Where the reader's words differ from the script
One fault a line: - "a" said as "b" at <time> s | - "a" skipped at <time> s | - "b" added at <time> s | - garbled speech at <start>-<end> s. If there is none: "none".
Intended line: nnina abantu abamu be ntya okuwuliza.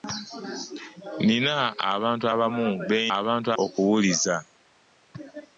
- "ntya" said as "abantu" at 3.2 s